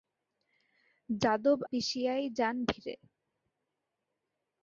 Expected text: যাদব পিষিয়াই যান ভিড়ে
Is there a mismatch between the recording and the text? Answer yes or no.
no